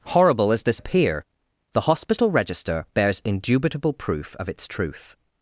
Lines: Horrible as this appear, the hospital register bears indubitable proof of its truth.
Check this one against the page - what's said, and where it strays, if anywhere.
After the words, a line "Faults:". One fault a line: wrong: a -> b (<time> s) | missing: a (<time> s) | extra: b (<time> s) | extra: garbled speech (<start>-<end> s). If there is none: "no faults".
Horrible as this appear, the hospital register bears indubitable proof of its truth.
Faults:
no faults